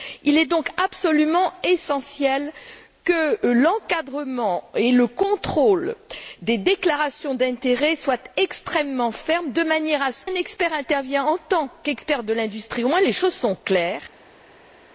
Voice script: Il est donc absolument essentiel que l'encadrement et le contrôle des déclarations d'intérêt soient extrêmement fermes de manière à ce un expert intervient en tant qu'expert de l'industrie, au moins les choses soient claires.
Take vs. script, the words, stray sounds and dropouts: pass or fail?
pass